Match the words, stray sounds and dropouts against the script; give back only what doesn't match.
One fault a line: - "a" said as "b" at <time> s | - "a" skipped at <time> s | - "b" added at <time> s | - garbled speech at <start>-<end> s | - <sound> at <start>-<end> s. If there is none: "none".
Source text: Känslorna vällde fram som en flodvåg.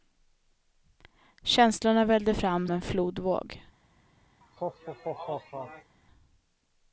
- "som" skipped at 2.7 s
- laugh at 4.4-6.0 s